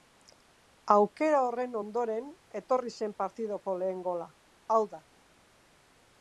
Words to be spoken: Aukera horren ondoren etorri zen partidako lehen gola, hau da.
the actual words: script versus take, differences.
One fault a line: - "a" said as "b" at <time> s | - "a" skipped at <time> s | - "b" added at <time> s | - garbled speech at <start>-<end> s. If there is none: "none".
none